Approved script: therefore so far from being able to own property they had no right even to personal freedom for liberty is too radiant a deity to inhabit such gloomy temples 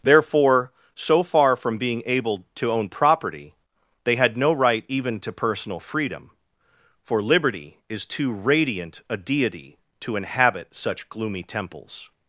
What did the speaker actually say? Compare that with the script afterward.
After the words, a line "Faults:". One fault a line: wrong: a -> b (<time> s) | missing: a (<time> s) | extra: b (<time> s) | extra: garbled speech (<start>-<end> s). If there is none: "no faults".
therefore so far from being able to own property they had no right even to personal freedom for liberty is too radiant a deity to inhabit such gloomy temples
Faults:
no faults